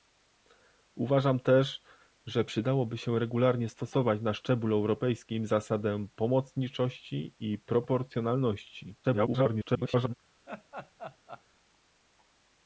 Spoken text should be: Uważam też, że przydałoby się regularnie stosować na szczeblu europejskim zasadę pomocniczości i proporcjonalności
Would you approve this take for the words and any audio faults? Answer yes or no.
no